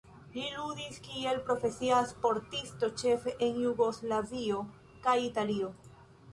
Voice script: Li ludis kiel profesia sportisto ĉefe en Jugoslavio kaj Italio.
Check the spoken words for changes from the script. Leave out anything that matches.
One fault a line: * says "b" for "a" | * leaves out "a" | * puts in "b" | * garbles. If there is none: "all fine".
all fine